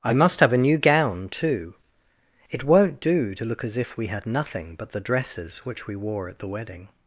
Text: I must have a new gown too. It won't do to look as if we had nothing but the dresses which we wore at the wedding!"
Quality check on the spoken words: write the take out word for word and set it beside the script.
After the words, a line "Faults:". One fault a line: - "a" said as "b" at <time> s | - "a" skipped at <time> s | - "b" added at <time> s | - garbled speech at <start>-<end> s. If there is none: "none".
I must have a new gown too. It won't do to look as if we had nothing but the dresses which we wore at the wedding!"
Faults:
none